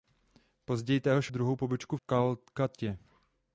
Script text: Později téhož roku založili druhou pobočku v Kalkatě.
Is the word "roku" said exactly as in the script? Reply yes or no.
no